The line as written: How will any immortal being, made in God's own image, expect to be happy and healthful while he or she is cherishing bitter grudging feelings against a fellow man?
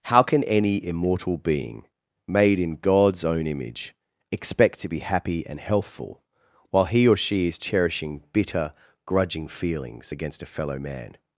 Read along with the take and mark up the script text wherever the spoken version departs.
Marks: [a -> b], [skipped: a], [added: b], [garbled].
How [will -> can] any immortal being, made in God's own image, expect to be happy and healthful while he or she is cherishing bitter grudging feelings against a fellow man?